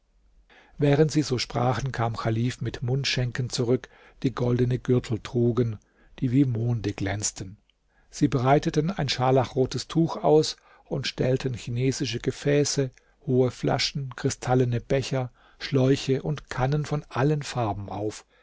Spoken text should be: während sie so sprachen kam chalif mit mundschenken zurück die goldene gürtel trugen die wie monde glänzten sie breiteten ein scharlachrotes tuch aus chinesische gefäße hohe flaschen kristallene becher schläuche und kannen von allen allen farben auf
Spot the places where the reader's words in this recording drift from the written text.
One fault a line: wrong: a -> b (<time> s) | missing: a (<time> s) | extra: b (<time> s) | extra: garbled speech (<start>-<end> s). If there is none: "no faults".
extra: und stellten (10.8 s)
missing: allen (17.4 s)